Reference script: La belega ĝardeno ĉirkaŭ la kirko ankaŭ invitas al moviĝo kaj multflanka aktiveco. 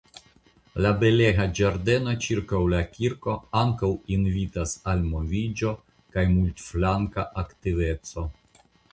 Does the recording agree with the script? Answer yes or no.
yes